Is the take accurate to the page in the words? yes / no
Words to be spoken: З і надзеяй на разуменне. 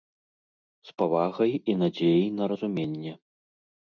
no